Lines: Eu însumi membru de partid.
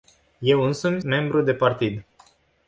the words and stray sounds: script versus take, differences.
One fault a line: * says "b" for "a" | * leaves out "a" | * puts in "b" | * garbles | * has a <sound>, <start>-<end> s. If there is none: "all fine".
all fine